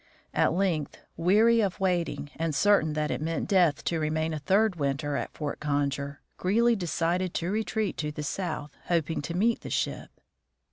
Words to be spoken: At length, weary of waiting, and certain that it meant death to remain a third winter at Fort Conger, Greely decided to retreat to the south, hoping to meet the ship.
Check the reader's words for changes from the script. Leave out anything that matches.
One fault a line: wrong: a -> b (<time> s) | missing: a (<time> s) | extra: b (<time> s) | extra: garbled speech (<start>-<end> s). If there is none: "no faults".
no faults